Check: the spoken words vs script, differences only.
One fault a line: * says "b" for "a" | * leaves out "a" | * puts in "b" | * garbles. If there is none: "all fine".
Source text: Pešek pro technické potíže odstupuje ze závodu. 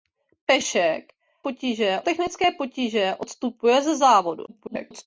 * says "potíže" for "pro"
* garbles